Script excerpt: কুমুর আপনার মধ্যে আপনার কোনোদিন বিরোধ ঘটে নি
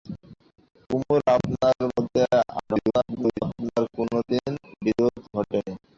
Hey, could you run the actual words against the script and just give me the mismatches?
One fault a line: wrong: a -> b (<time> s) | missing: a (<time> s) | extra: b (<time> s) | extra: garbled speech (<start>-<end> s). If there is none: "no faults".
extra: garbled speech (2.6-3.4 s)